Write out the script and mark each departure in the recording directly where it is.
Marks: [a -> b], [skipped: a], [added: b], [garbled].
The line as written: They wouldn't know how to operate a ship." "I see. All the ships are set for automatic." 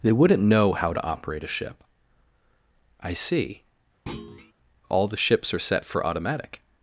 They wouldn't know how to operate a ship." "I see. All the ships are set for automatic."